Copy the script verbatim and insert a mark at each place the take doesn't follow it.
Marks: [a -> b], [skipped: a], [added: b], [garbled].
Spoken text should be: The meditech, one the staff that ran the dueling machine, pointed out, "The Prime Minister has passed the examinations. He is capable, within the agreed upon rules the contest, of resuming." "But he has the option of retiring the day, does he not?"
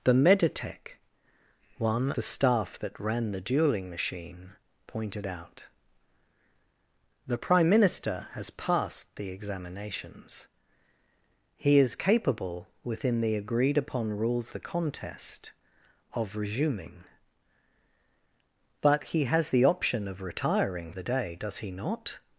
The meditech, one the staff that ran the dueling machine, pointed out, "The Prime Minister has passed the examinations. He is capable, within the agreed upon rules the contest, of resuming." "But he has the option of retiring the day, does he not?"